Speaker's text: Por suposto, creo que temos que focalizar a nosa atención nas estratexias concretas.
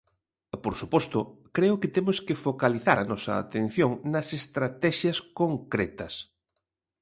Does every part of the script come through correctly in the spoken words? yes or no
yes